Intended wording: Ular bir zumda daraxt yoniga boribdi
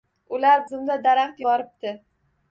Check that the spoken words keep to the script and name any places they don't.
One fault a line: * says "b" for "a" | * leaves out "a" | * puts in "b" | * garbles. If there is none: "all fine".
* leaves out "bir"
* leaves out "yoniga"